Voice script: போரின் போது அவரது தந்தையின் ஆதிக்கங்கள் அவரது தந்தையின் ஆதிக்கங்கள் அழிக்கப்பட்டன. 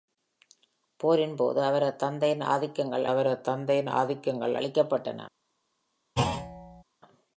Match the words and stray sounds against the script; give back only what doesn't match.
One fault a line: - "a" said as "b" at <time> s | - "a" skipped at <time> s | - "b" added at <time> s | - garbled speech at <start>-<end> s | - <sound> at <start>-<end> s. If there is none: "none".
- thud at 6.2-6.8 s